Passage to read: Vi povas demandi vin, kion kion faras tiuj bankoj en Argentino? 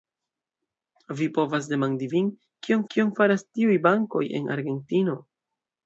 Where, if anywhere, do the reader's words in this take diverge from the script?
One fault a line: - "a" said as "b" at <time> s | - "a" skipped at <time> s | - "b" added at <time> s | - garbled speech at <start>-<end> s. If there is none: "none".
none